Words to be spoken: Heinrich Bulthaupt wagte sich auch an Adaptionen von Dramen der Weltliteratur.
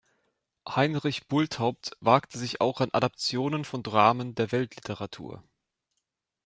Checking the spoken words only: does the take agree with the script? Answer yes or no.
yes